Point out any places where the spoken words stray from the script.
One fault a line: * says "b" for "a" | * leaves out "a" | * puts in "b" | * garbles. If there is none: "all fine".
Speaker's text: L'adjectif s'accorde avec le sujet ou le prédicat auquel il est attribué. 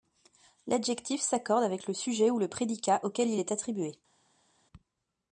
all fine